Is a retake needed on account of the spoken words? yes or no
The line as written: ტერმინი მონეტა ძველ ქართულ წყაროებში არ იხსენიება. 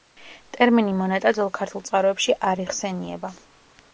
no